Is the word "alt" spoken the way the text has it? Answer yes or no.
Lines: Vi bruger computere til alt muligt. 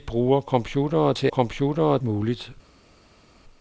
no